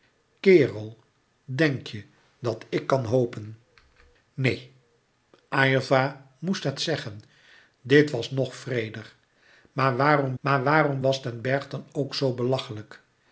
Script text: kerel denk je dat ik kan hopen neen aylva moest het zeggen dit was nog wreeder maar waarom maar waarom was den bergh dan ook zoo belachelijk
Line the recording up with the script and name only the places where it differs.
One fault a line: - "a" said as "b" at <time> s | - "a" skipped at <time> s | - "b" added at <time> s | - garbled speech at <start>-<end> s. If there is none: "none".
none